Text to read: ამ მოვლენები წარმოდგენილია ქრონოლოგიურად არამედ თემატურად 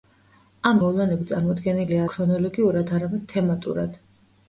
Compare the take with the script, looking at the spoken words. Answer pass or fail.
pass